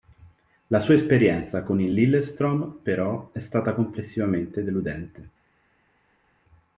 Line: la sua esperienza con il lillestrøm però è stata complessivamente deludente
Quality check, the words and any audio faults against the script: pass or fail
pass